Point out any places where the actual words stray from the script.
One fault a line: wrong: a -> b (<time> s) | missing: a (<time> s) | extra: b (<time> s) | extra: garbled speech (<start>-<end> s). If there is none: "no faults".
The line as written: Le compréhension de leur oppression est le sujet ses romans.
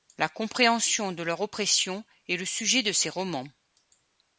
wrong: Le -> La (0.2 s)
extra: de (2.8 s)